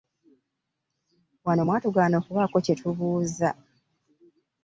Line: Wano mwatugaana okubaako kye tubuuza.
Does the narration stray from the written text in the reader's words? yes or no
no